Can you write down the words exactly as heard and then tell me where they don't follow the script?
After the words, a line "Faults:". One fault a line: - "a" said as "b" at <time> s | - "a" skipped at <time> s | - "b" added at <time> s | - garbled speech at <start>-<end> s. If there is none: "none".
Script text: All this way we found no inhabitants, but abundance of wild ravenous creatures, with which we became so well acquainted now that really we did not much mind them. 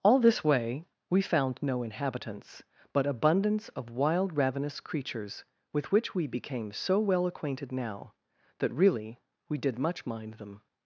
All this way we found no inhabitants, but abundance of wild ravenous creatures, with which we became so well acquainted now that really we did much mind them.
Faults:
- "not" skipped at 9.8 s